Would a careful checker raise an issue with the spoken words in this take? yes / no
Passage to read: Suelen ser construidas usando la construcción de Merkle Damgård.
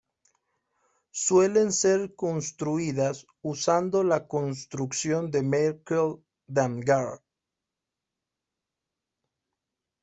no